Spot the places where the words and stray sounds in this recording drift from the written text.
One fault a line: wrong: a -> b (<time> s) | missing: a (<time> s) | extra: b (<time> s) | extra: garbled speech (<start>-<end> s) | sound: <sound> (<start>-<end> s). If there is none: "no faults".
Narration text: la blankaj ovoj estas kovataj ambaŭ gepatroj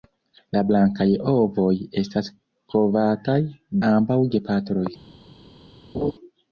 sound: laugh (5.9-6.1 s)